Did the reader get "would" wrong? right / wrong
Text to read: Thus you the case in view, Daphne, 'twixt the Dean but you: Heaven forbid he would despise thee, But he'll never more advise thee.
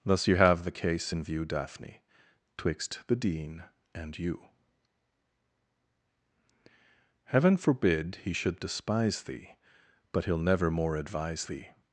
wrong